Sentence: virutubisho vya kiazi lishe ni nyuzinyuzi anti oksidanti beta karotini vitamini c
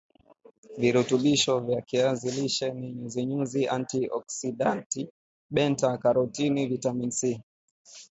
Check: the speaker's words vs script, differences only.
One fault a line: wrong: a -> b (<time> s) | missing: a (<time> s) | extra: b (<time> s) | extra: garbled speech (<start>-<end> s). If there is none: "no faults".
no faults